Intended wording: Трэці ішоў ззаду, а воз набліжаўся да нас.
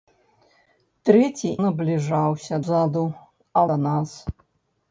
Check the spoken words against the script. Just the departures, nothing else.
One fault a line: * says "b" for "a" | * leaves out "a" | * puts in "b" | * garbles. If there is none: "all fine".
* says "набліжаўся" for "ішоў"
* leaves out "воз набліжаўся"